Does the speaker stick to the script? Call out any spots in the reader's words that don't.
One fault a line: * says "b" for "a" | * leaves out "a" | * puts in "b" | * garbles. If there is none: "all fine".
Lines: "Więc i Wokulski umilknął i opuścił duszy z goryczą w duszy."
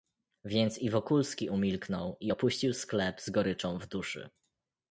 * says "sklep" for "duszy"